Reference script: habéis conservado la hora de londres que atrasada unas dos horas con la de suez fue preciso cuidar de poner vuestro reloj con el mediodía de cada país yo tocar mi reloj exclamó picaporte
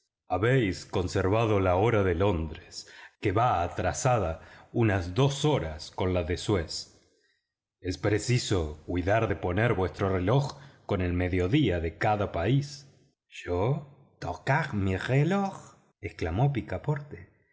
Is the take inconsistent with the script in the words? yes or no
yes